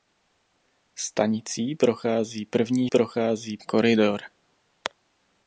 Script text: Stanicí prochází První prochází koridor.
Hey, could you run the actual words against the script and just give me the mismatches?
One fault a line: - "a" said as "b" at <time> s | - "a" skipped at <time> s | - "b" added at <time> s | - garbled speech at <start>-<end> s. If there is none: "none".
none